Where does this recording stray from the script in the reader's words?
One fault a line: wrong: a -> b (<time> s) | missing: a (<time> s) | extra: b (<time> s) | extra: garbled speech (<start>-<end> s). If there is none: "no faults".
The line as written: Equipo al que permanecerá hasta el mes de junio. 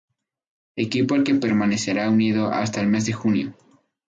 extra: unido (2.1 s)